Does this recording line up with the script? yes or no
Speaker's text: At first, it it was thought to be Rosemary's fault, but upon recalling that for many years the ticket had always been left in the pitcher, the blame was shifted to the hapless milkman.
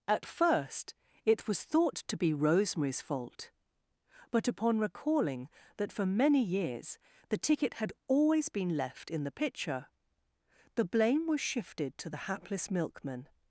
no